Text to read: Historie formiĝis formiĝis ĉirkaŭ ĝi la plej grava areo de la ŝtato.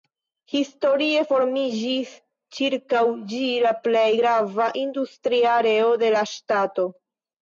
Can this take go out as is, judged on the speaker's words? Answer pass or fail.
fail